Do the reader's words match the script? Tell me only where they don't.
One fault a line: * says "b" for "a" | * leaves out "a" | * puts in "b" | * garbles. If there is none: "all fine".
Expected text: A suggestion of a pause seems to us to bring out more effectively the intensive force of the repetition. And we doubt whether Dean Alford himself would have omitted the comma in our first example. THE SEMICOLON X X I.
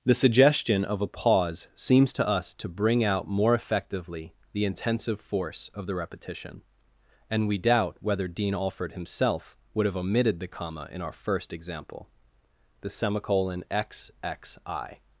* says "The" for "A"